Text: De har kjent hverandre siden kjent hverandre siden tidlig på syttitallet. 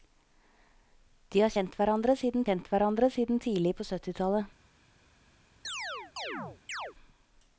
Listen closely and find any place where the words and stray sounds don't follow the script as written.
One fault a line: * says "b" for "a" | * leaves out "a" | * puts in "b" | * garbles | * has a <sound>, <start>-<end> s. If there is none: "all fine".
* has a chirp, 5.6-6.9 s